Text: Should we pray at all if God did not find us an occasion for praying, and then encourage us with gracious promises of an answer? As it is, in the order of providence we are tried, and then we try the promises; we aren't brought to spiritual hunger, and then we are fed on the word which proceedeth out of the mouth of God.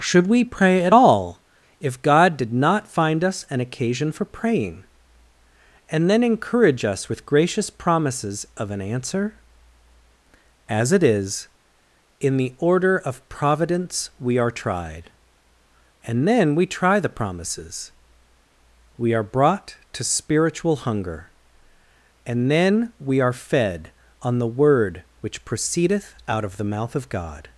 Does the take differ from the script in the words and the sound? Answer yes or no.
yes